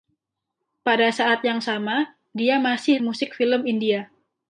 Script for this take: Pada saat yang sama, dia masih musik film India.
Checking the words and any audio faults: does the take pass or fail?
pass